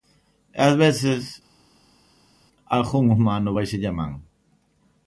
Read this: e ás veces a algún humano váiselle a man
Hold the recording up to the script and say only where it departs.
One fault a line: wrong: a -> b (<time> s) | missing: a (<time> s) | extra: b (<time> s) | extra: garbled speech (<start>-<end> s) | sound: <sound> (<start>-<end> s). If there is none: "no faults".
no faults